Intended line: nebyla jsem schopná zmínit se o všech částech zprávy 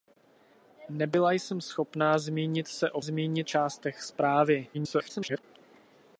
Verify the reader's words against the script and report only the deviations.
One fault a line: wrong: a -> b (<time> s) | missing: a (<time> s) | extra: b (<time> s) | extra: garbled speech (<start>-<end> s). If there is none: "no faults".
wrong: všech -> zmínit (3.0 s)
extra: garbled speech (4.7-5.4 s)